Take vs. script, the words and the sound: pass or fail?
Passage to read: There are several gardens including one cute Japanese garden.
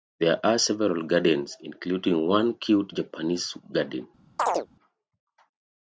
fail